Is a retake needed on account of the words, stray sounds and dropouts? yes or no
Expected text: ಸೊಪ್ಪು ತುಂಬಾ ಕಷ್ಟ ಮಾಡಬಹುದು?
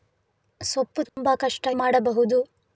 yes